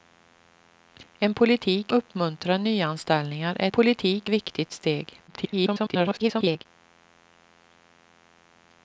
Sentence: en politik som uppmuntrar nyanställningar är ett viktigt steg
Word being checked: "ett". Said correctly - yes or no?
no